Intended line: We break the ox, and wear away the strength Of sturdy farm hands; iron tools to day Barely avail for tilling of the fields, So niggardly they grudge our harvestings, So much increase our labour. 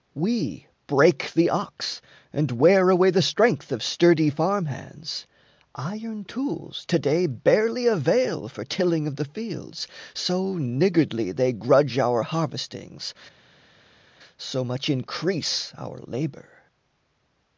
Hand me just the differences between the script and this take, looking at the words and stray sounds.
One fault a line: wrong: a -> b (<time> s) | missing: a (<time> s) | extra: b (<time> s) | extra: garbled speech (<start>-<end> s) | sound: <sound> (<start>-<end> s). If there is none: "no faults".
no faults